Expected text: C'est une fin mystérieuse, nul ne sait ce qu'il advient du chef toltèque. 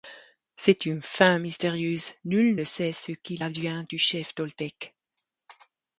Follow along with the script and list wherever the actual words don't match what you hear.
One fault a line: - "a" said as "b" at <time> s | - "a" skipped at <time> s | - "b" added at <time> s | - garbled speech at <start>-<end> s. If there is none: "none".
none